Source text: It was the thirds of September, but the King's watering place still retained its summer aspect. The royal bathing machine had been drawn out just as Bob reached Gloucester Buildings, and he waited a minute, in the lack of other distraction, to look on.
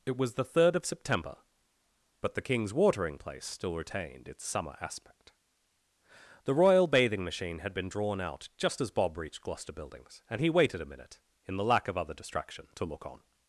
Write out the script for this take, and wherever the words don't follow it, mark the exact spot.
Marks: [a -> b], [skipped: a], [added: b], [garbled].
It was the [thirds -> third] of September, but the King's watering place still retained its summer aspect. The royal bathing machine had been drawn out just as Bob reached Gloucester Buildings, and he waited a minute, in the lack of other distraction, to look on.